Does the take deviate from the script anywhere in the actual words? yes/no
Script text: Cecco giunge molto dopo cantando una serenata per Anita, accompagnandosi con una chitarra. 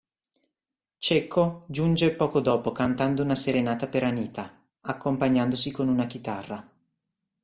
yes